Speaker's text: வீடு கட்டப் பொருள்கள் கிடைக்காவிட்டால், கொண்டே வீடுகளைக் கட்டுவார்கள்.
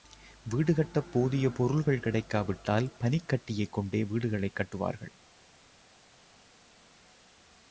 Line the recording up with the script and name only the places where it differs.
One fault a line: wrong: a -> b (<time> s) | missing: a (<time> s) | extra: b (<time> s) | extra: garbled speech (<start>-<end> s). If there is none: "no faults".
extra: போதிய (1.1 s)
extra: பனிக்கட்டியைக் (3.0 s)